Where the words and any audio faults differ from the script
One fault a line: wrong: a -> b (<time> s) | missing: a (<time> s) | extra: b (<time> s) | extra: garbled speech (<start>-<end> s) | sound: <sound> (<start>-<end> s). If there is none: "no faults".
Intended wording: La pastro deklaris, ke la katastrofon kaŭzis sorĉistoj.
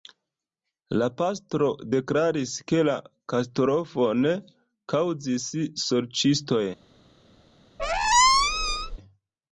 sound: squeak (7.8-9.0 s)